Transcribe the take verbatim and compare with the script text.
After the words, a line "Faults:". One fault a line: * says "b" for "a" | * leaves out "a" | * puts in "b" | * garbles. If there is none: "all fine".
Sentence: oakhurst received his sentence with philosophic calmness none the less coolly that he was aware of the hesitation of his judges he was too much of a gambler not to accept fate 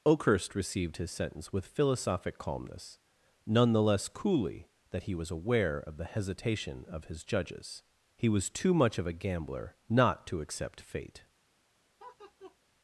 oakhurst received his sentence with philosophic calmness none the less coolly that he was aware of the hesitation of his judges he was too much of a gambler not to accept fate
Faults:
all fine